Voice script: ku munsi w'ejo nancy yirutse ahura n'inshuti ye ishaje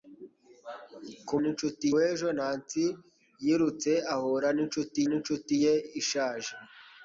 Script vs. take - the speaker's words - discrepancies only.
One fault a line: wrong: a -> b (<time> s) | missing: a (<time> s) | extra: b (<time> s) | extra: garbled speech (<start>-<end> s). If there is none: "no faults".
wrong: munsi -> n'inshuti (1.4 s)
extra: n'inshuti (5.1 s)